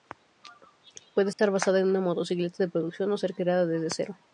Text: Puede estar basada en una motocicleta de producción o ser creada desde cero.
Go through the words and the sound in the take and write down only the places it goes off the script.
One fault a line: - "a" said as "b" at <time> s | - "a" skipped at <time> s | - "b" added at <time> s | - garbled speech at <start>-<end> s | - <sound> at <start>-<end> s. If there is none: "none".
- dropout at 1.3-1.4 s